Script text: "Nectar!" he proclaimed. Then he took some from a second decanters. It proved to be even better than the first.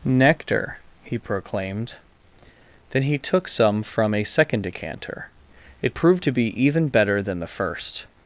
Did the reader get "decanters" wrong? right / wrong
wrong